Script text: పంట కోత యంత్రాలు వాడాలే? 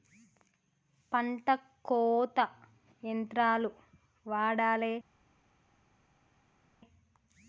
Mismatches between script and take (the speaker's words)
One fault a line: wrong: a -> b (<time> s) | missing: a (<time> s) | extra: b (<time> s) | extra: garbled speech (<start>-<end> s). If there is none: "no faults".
no faults